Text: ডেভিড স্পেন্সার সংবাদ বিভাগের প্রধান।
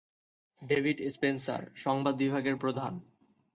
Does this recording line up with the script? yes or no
yes